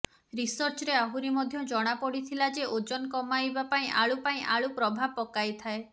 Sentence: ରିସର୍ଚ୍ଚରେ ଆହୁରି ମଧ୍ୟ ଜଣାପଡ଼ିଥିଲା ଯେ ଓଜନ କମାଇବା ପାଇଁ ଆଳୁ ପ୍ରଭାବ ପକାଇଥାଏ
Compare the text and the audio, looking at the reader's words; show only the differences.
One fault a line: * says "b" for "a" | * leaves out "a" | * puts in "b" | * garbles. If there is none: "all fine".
* puts in "ପାଇଁ ଆଳୁ"